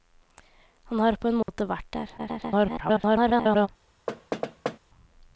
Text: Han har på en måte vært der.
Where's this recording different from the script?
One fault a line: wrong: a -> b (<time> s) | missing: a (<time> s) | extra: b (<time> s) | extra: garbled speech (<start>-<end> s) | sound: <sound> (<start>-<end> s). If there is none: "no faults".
sound: dropout (1.4-1.5 s)
extra: garbled speech (2.2-3.7 s)
sound: thud (4.1-4.8 s)